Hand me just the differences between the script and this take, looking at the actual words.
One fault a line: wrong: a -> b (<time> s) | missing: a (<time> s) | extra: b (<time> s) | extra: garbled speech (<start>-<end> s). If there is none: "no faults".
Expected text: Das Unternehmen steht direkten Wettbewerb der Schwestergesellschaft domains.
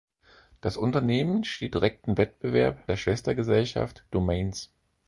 no faults